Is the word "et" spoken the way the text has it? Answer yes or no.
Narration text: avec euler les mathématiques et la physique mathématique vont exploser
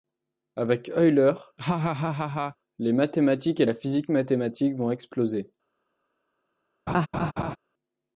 yes